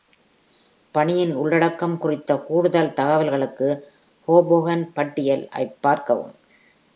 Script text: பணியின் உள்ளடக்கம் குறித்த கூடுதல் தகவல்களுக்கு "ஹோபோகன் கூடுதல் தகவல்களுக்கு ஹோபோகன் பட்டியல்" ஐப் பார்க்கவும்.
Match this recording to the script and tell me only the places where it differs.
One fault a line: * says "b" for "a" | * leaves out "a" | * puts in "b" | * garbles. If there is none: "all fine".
* leaves out "கூடுதல் தகவல்களுக்கு ஹோபோகன்"